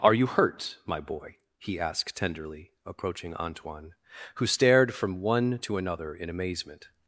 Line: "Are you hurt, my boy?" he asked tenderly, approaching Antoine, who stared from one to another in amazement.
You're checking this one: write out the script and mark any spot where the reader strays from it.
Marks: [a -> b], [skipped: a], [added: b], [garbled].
"Are you hurt, my boy?" he asked tenderly, approaching Antoine, who stared from one to another in amazement.